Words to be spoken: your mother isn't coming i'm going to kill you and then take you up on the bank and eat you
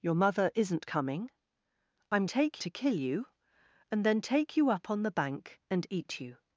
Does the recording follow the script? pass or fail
fail